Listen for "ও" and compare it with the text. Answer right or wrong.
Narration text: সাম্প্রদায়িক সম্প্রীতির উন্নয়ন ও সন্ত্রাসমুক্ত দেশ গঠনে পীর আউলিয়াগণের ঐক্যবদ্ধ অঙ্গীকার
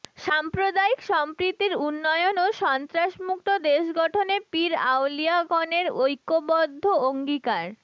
right